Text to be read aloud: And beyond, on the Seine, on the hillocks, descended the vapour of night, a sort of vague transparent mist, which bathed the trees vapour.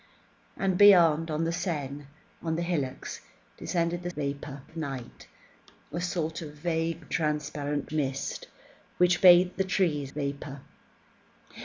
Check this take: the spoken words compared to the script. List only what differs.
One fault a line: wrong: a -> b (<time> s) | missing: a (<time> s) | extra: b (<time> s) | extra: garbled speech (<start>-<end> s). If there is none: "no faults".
no faults